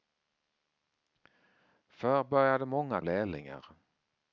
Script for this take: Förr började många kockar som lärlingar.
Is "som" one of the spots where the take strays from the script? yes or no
yes